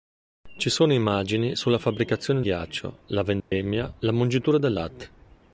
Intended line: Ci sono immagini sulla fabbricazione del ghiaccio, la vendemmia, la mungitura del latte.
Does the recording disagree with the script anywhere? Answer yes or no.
yes